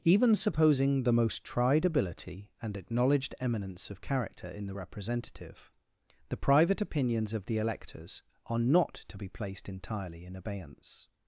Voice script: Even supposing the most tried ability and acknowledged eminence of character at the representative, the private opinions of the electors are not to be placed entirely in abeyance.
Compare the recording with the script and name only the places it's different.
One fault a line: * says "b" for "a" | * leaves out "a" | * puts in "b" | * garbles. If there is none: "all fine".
* says "in" for "at"